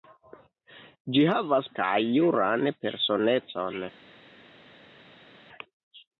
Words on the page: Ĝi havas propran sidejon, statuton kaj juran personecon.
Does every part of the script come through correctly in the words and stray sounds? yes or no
no